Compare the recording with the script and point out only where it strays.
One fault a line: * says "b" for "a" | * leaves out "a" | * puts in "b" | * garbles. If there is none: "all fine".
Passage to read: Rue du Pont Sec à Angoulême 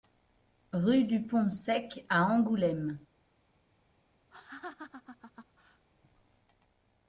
all fine